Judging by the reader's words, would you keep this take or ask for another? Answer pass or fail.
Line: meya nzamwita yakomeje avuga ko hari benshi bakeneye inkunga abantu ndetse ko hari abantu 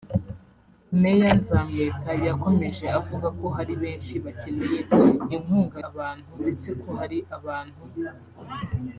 pass